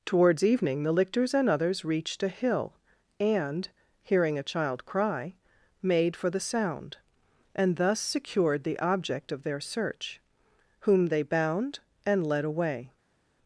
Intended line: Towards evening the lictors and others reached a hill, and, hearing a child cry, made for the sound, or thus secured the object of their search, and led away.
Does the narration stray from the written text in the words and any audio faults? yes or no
yes